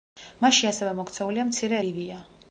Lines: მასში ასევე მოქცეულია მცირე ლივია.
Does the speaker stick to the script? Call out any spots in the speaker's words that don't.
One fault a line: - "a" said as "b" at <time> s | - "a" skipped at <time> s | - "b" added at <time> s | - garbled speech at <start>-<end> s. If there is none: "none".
none